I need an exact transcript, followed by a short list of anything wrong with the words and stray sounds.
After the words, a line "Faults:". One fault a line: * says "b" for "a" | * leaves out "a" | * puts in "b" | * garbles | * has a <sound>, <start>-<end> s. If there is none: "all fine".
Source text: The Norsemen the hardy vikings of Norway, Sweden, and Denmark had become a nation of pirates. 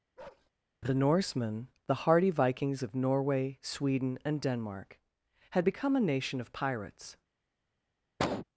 The Norsemen the hardy vikings of Norway, Sweden, and Denmark had become a nation of pirates.
Faults:
* has a bark, 0.2-0.5 s
* has a cough, 8.2-8.5 s